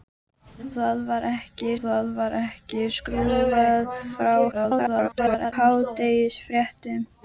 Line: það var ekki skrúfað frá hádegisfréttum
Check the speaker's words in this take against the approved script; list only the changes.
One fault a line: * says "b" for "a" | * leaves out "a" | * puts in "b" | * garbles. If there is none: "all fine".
* puts in "það var ekki"
* garbles